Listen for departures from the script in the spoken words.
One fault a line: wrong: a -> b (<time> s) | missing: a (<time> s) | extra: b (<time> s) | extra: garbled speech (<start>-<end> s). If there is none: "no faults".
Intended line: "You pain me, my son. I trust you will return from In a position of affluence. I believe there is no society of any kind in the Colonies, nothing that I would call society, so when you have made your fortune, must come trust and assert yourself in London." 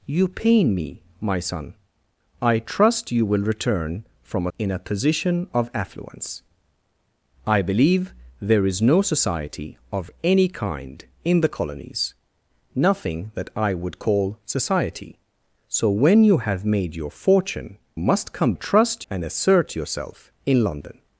no faults